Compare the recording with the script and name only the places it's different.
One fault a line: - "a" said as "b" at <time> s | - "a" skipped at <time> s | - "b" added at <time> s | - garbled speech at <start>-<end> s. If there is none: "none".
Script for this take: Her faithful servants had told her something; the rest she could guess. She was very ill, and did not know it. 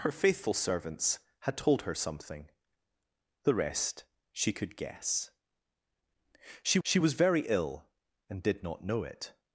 - "she" added at 6.8 s